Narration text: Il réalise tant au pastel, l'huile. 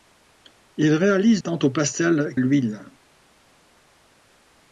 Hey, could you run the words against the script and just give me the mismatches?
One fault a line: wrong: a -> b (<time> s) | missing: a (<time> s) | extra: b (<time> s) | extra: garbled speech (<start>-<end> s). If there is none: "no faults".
no faults